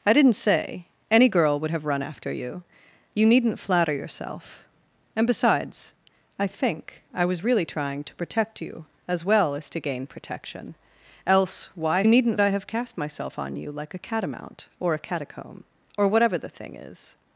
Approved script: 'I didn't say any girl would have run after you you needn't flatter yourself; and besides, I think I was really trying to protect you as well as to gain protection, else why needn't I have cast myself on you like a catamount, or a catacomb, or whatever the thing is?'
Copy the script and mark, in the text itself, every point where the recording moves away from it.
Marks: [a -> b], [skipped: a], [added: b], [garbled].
'I didn't say any girl would have run after you you needn't flatter yourself; and besides, I think I was really trying to protect you as well as to gain protection, else why needn't I have cast myself on you like a catamount, or a catacomb, or whatever the thing is?'